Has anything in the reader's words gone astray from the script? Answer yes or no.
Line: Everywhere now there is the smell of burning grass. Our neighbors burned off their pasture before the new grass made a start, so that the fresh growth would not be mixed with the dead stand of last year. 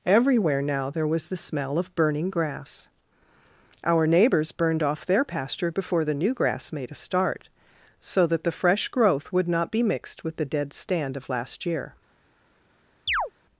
yes